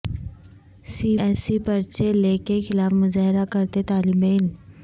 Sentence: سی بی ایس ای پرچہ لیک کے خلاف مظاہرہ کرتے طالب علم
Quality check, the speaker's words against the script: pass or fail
fail